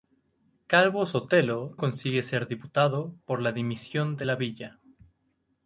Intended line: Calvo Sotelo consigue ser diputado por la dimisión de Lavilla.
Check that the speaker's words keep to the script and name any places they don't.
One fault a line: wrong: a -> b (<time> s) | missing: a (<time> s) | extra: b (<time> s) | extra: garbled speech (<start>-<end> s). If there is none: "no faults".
no faults